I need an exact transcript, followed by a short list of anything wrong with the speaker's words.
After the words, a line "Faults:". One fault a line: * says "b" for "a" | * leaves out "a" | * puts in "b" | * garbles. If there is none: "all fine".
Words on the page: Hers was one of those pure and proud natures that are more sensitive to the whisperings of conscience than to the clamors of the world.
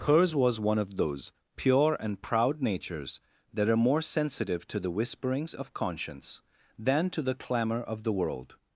Hers was one of those pure and proud natures that are more sensitive to the whisperings of conscience than to the clamor of the world.
Faults:
* says "clamor" for "clamors"